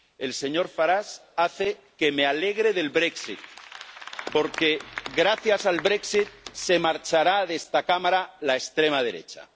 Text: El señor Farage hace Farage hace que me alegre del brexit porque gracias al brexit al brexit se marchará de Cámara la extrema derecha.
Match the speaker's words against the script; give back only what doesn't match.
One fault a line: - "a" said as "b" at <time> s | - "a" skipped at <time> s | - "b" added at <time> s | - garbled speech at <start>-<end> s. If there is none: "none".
- "Farage hace" skipped at 1.8 s
- "al brexit" skipped at 6.3 s
- "esta" added at 7.5 s